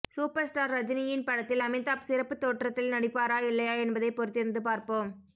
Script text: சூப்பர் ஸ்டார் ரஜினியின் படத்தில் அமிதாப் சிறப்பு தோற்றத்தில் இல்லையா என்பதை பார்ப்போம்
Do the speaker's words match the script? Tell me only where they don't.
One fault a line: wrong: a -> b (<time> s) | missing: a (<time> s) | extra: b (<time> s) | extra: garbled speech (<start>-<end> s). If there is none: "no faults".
extra: நடிப்பாரா (2.9 s)
extra: பொறுத்திருந்து (4.1 s)